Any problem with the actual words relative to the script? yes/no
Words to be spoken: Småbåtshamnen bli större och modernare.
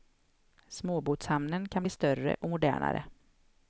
yes